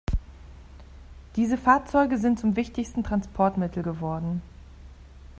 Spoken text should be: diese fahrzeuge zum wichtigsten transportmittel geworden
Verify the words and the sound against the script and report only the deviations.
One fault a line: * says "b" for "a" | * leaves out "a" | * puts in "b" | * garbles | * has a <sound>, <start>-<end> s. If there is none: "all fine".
* puts in "sind"